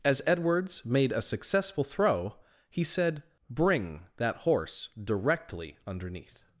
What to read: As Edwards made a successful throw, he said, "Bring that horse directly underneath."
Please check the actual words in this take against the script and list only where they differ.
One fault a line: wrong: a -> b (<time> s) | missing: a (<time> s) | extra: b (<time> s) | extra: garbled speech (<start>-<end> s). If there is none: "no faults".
no faults